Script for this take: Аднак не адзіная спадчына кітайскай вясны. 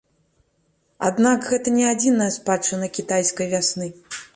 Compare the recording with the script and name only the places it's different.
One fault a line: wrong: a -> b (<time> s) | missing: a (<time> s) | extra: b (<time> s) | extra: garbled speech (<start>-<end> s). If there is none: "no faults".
extra: гэта (1.5 s)